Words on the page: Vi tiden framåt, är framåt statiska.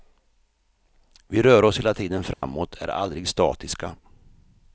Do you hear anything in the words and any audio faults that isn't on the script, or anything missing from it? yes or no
yes